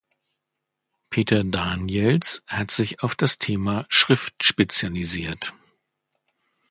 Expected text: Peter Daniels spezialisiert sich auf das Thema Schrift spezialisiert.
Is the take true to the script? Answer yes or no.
no